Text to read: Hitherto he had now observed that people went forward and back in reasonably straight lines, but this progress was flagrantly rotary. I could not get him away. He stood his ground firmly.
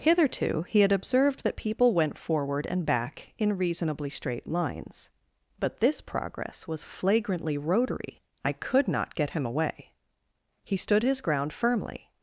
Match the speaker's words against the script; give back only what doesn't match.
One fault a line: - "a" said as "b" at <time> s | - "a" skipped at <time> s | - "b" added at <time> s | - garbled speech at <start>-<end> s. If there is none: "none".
- "now" skipped at 0.9 s